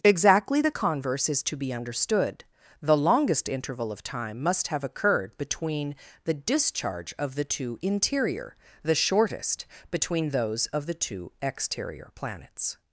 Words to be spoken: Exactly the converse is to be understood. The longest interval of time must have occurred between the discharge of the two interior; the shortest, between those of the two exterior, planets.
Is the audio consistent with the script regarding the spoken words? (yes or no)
yes